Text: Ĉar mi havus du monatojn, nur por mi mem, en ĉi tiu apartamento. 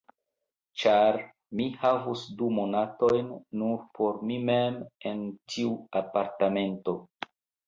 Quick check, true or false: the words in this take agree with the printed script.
false